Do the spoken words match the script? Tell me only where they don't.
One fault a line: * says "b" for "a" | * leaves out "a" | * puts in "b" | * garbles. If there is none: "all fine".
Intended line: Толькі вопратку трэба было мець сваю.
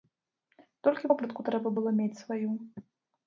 all fine